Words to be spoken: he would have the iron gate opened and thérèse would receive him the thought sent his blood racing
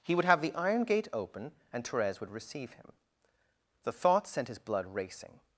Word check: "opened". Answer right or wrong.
wrong